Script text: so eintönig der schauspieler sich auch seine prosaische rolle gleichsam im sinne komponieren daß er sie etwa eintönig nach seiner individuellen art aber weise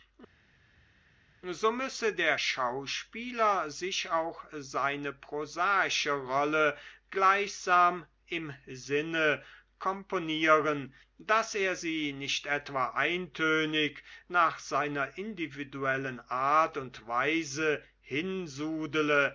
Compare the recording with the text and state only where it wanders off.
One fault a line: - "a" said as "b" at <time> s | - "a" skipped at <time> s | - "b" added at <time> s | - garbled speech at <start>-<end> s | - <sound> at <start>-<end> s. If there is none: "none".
- "eintönig" said as "müsse" at 1.7 s
- "nicht" added at 12.1 s
- "aber" said as "und" at 16.8 s